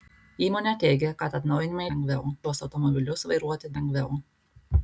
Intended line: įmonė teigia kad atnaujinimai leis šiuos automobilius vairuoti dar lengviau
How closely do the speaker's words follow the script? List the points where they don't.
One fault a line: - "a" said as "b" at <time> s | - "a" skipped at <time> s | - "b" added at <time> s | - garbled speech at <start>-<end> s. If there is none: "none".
- "leis" said as "lengviau" at 1.9 s
- "dar" skipped at 3.8 s